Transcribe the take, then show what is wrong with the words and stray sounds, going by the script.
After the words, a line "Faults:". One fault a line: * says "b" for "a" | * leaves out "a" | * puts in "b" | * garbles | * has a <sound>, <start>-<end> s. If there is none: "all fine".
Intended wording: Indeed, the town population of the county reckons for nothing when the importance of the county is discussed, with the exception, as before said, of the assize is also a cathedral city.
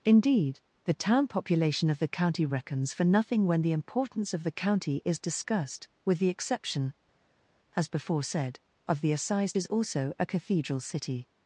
Indeed, the town population of the county reckons for nothing when the importance of the county is discussed, with the exception, as before said, of the assize is also a cathedral city.
Faults:
all fine